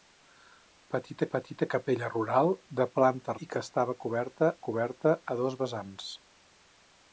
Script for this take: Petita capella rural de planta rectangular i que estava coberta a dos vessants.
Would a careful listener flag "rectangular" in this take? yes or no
yes